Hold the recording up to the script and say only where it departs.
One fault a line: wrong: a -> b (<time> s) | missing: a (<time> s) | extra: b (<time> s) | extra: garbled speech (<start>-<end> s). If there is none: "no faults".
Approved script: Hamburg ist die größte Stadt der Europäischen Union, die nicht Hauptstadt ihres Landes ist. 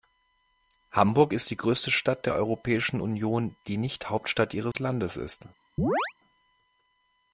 no faults